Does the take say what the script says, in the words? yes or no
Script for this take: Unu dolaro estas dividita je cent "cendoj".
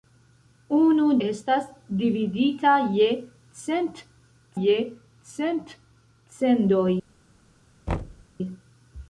no